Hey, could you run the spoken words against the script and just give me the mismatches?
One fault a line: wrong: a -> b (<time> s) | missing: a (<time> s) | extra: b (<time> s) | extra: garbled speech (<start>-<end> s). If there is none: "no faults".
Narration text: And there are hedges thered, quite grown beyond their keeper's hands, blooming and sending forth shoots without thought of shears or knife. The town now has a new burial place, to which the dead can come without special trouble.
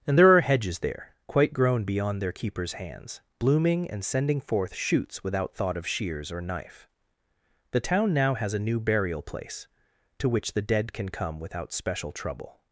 wrong: thered -> there (0.8 s)